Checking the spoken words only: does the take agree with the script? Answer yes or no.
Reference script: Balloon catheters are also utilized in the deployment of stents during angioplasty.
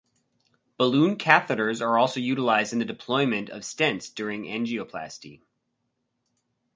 yes